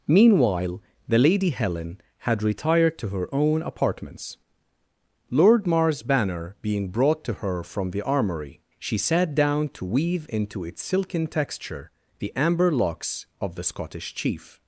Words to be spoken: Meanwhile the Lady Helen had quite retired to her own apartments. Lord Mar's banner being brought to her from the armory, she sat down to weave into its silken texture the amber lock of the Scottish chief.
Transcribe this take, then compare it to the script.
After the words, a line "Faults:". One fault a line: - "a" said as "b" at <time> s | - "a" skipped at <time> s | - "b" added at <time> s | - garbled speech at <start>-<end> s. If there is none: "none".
Meanwhile the Lady Helen had retired to her own apartments. Lord Mar's banner being brought to her from the armory, she sat down to weave into its silken texture the amber locks of the Scottish chief.
Faults:
- "quite" skipped at 2.4 s
- "lock" said as "locks" at 12.7 s